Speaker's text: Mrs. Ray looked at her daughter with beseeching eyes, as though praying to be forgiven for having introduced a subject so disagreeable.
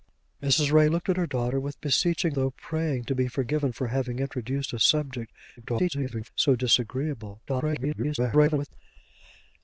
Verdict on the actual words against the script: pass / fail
fail